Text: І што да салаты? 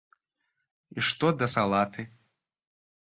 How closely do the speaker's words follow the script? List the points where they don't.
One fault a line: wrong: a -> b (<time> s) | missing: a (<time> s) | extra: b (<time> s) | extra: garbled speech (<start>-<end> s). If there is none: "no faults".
no faults